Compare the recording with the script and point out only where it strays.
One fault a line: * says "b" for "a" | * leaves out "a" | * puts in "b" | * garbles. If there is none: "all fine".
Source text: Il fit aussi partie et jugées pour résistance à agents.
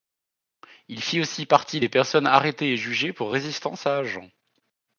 * puts in "des personnes arrêtées"